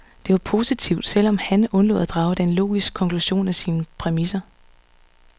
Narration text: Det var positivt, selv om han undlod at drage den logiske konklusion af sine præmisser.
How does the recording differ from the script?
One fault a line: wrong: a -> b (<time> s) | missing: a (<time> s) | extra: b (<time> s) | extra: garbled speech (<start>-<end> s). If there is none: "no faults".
no faults